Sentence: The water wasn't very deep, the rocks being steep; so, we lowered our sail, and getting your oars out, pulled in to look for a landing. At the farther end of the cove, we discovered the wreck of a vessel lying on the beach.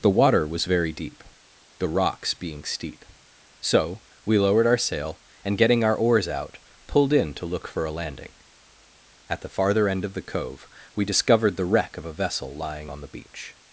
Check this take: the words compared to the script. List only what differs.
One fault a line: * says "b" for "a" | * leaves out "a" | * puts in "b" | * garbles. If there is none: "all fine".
* says "was" for "wasn't"
* says "our" for "your"